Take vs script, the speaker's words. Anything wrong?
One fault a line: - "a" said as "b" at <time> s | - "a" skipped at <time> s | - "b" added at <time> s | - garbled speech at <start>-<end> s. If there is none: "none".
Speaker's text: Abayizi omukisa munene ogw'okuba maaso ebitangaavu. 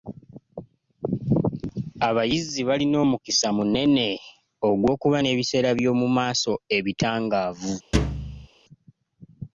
- "balina" added at 2.7 s
- "n'ebiseera by'omu" added at 5.2 s